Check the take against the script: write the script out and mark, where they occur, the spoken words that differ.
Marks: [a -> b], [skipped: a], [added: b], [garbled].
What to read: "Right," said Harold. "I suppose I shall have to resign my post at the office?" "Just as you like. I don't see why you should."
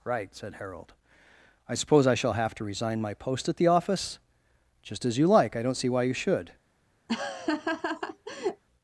"Right," said Harold. "I suppose I shall have to resign my post at the office?" "Just as you like. I don't see why you should."